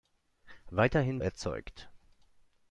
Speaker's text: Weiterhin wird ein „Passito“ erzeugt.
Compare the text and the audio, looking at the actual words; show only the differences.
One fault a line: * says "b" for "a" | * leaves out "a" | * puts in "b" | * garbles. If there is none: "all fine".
* leaves out "wird ein Passito"